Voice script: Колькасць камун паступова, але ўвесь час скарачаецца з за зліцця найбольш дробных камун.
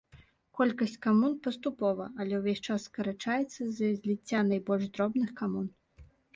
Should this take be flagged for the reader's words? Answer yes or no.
no